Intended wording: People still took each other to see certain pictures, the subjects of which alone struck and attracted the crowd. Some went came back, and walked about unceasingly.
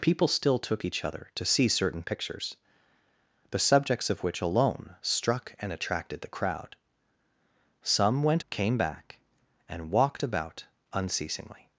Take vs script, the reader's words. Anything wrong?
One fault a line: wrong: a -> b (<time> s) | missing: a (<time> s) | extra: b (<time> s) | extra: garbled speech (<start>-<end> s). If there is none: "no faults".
no faults